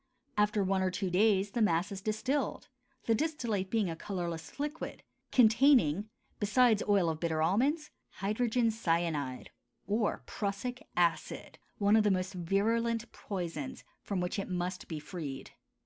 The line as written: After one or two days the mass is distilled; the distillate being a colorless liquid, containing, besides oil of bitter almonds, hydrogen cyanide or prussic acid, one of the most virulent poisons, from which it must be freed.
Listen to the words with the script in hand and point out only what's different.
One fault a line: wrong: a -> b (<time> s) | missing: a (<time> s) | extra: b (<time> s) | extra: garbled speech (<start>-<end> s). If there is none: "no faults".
no faults